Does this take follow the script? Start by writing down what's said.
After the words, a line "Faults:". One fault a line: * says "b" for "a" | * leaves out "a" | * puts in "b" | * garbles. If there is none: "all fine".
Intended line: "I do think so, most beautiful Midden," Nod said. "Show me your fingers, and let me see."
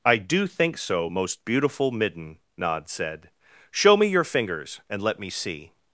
"I do think so, most beautiful Midden," Nod said. "Show me your fingers, and let me see."
Faults:
all fine